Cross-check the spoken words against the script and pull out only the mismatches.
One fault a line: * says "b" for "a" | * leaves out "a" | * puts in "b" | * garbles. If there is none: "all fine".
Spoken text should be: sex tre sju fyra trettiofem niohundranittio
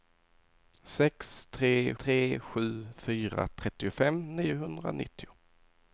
* puts in "tre"